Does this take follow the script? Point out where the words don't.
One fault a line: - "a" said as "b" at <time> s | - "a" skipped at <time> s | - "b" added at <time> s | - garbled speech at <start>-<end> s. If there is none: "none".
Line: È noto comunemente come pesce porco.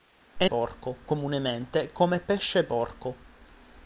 - "noto" said as "porco" at 0.4 s